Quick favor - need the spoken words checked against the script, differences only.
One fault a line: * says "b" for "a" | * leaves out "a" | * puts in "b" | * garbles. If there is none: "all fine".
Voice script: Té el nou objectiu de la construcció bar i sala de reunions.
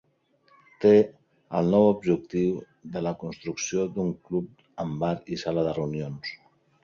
* puts in "d'un club amb"